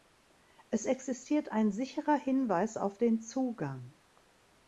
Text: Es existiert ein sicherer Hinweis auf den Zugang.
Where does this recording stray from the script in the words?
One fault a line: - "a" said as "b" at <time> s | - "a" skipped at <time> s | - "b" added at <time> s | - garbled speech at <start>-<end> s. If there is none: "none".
none